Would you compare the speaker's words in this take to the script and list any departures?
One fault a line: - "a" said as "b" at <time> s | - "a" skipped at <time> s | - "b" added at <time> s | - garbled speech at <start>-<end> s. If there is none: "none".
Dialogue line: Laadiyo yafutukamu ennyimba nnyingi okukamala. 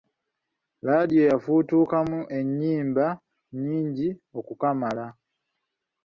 none